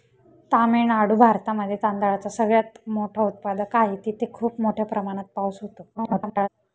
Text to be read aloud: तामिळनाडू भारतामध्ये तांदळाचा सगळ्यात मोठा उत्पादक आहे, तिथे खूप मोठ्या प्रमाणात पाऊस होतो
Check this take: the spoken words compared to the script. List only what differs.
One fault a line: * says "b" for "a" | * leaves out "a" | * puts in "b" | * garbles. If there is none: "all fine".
* garbles